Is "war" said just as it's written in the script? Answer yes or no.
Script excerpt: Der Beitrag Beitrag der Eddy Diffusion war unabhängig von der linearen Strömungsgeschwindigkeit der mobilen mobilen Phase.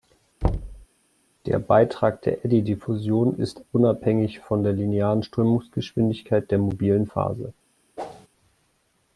no